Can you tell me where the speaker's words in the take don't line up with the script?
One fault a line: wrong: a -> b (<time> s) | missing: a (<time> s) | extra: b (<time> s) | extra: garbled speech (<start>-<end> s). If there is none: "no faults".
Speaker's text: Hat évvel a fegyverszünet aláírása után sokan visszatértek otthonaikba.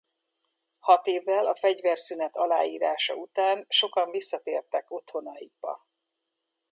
no faults